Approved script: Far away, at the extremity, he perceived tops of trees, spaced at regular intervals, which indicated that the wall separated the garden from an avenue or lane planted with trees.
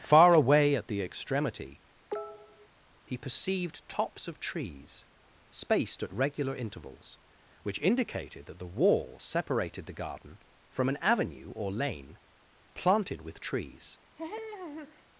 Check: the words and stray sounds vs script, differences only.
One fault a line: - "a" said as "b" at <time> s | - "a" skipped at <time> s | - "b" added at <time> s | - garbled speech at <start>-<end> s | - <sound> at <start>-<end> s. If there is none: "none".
- cough at 2.1-2.7 s
- laugh at 14.2-15.1 s